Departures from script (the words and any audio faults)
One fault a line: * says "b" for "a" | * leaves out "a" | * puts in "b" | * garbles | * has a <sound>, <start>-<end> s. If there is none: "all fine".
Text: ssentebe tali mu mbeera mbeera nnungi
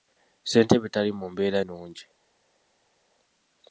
* leaves out "mbeera"